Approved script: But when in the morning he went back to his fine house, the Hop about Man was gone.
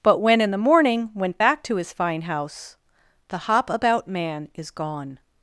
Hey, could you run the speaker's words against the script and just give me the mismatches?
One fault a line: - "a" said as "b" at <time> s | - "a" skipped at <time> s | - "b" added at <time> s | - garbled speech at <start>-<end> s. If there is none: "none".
- "he" skipped at 1.1 s
- "was" said as "is" at 4.5 s